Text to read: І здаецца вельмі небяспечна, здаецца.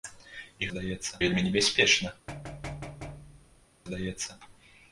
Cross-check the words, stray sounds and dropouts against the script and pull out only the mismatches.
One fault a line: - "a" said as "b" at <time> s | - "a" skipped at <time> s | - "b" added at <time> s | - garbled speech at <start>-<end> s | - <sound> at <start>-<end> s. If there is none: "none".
- thud at 2.3-3.7 s